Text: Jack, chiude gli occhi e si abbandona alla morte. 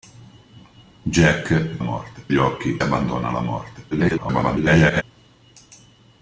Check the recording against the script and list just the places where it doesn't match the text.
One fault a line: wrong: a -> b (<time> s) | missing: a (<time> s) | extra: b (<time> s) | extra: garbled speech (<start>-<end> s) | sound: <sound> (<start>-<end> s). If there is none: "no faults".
wrong: chiude -> morte (1.8 s)
missing: e si (2.8 s)
extra: garbled speech (3.9-5.0 s)